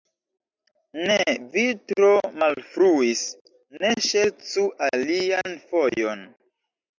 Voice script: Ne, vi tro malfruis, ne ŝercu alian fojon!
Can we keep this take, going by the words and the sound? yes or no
no